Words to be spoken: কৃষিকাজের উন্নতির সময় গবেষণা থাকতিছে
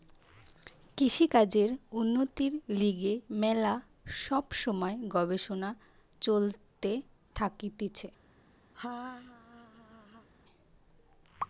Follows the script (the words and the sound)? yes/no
no